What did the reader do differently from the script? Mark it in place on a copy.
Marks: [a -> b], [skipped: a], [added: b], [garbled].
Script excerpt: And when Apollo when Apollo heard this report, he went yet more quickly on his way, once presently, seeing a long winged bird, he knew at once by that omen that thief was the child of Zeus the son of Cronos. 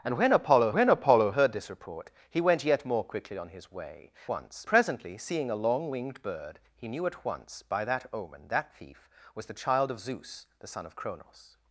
And when Apollo when Apollo heard this report, he went yet more quickly on his way, once presently, seeing a long winged bird, he knew at once by that omen that thief was the child of Zeus the son of Cronos.